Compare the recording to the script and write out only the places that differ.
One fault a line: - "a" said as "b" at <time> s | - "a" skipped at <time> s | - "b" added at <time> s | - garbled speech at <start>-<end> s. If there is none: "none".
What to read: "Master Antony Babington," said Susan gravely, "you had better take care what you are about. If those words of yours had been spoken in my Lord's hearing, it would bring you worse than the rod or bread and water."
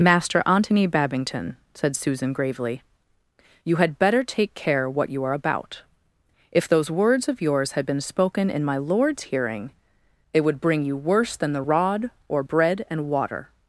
none